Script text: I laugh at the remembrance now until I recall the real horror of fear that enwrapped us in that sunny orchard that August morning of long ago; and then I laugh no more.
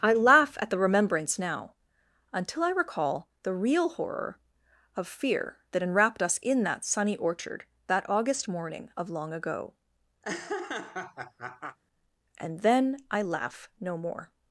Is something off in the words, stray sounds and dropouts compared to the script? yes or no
yes